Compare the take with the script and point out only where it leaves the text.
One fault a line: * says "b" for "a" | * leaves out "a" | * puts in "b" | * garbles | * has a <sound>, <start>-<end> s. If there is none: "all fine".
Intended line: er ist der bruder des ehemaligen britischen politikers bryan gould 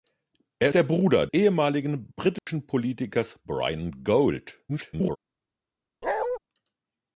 * leaves out "ist"
* leaves out "des"
* has a dropout, 2.4-2.5 s
* garbles
* has a bark, 6.0-6.4 s